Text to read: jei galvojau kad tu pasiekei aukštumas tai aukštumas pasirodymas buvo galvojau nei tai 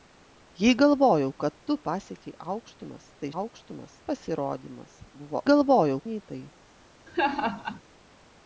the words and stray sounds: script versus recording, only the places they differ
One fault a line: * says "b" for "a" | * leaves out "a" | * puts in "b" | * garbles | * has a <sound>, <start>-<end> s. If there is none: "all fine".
* has a laugh, 7.1-7.8 s